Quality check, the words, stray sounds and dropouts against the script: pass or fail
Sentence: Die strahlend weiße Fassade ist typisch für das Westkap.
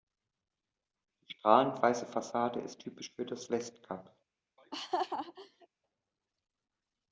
fail